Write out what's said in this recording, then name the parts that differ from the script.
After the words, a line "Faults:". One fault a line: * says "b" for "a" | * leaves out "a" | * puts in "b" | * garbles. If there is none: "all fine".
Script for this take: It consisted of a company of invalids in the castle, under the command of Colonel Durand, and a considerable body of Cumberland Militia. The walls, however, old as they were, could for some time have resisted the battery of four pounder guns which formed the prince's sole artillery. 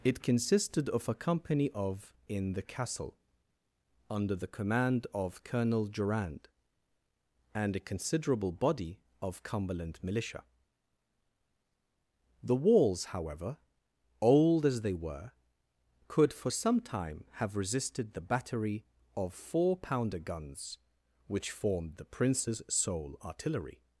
It consisted of a company of in the castle, under the command of Colonel Durand, and a considerable body of Cumberland Militia. The walls, however, old as they were, could for some time have resisted the battery of four pounder guns which formed the prince's sole artillery.
Faults:
* leaves out "invalids"